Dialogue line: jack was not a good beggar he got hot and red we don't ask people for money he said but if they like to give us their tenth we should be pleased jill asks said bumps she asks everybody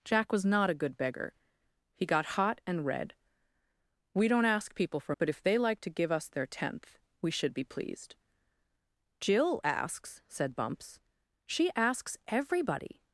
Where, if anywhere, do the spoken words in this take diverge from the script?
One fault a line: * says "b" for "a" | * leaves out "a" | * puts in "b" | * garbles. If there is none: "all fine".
* leaves out "money he said"